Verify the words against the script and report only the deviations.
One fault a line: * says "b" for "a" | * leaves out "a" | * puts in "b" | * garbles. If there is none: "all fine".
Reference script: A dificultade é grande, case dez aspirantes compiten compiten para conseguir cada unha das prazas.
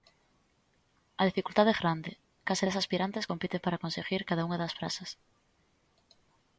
* leaves out "compiten"